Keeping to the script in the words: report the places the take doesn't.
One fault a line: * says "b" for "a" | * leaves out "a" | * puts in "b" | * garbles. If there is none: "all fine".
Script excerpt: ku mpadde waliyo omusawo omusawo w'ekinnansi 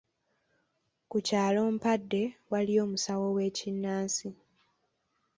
* puts in "kyalo"
* leaves out "omusawo"